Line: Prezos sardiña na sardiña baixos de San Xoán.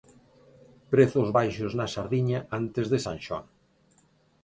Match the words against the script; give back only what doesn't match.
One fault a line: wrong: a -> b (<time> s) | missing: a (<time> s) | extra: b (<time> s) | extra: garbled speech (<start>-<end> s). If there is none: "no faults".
wrong: sardiña -> baixos (1.4 s)
wrong: baixos -> antes (2.6 s)